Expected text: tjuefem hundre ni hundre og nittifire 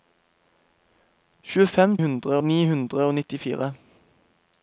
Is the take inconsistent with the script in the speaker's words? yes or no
no